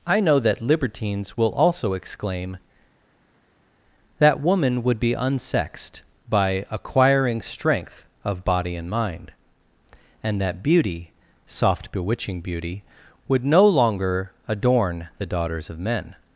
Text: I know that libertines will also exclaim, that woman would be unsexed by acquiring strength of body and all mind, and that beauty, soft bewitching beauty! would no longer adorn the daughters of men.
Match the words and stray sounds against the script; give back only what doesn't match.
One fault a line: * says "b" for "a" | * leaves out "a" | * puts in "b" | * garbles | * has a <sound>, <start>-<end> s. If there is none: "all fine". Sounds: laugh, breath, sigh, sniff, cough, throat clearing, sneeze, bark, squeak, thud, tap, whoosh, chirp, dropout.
* leaves out "all"